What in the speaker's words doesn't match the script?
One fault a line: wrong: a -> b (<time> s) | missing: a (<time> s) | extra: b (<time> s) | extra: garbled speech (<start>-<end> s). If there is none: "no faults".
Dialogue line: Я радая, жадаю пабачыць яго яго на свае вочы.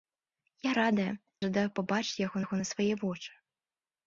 no faults